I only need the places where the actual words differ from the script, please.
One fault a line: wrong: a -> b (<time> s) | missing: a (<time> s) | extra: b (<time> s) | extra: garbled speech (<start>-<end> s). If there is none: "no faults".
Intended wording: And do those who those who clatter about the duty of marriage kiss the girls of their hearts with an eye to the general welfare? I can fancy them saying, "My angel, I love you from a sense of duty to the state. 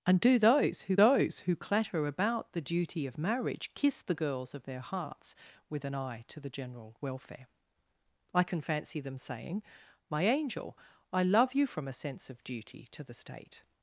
no faults